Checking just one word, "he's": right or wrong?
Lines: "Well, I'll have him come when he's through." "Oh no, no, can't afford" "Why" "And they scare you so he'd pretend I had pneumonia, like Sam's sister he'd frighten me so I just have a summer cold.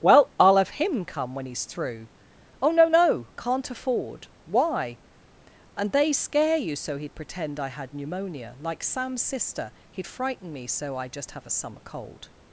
right